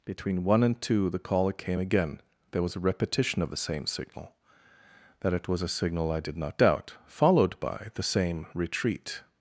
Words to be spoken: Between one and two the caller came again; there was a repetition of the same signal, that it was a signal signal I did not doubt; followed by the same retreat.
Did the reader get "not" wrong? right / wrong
right